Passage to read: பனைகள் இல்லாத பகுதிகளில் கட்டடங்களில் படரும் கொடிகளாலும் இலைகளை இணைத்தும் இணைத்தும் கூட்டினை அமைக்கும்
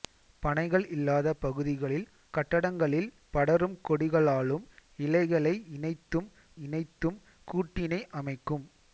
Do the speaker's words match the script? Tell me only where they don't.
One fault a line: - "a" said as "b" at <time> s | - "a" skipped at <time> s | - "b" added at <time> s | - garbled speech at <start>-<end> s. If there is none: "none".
none